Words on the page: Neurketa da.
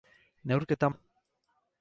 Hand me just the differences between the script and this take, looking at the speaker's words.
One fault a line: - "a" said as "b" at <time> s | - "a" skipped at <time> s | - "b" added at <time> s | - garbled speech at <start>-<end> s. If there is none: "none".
none